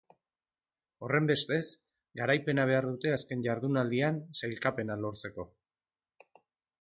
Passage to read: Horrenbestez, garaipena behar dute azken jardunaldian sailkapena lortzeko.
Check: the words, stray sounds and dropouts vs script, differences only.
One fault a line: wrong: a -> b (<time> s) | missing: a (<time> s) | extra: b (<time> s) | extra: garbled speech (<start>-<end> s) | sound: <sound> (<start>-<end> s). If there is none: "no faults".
no faults